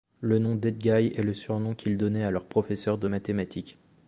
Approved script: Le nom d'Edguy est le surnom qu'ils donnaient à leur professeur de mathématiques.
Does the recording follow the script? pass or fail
pass